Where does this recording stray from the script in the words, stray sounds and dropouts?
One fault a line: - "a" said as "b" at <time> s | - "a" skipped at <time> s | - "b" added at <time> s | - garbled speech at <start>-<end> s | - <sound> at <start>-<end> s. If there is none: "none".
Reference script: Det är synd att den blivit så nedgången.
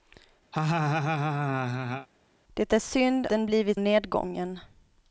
- laugh at 0.5-2.1 s
- "att" skipped at 3.3 s
- "så" skipped at 3.8 s